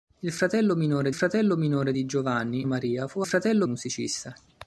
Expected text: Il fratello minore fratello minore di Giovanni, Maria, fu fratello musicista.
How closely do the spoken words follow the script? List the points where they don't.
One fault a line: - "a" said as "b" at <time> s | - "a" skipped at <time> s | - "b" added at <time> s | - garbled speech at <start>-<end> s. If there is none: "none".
none